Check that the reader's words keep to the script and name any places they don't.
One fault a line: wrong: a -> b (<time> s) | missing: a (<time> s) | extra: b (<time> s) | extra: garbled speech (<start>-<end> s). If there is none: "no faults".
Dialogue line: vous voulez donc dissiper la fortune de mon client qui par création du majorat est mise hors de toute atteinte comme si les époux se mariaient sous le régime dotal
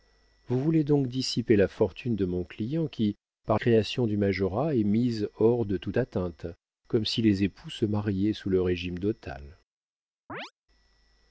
no faults